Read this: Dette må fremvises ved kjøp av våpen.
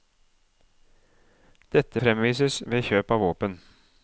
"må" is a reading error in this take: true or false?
true